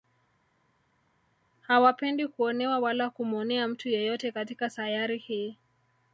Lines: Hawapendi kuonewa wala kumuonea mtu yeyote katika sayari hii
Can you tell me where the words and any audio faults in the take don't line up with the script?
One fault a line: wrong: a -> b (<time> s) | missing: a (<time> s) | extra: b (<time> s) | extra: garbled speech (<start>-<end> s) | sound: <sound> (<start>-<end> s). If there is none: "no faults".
no faults